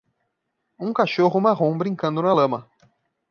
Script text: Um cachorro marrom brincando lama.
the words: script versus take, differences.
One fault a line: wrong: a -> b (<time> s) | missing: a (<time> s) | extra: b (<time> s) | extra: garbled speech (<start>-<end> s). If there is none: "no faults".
extra: na (2.2 s)